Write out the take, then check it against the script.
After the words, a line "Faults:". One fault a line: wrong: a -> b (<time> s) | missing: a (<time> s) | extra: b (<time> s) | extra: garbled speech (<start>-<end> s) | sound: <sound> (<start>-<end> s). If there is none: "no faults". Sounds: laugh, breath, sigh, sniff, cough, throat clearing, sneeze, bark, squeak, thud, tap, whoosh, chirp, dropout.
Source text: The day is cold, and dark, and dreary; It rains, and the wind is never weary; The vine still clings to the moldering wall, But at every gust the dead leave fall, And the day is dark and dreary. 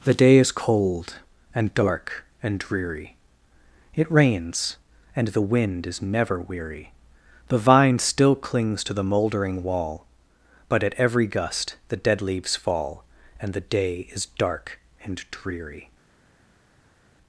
The day is cold, and dark, and dreary; It rains, and the wind is never weary; The vine still clings to the moldering wall, But at every gust the dead leaves fall, And the day is dark and dreary.
Faults:
wrong: leave -> leaves (12.2 s)